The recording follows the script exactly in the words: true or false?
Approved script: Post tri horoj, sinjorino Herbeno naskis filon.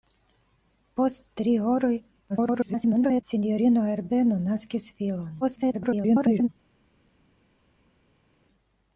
false